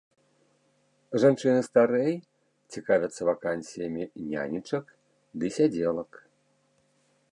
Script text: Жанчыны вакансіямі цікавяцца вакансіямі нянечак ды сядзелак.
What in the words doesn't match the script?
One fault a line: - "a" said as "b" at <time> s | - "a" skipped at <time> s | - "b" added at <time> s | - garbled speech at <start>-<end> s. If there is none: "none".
- "вакансіямі" said as "старэй" at 1.6 s